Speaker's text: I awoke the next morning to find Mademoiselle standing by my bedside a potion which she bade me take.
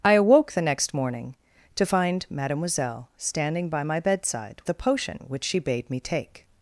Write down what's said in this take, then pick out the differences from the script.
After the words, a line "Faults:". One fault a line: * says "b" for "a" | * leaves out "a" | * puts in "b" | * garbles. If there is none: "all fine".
I awoke the next morning to find Mademoiselle standing by my bedside a potion which she bade me take.
Faults:
all fine